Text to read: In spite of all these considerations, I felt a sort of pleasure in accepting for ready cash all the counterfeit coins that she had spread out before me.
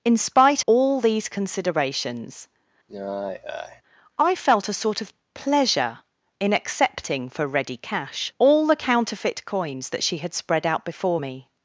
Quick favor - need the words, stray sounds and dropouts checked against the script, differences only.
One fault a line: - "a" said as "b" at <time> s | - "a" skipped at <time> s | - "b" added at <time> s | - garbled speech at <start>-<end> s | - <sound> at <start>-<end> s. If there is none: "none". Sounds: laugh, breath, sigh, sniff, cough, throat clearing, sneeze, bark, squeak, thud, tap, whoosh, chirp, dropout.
- "of" skipped at 0.6 s
- sigh at 2.9-3.8 s